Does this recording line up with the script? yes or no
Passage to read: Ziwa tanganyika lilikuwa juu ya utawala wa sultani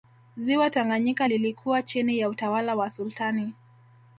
no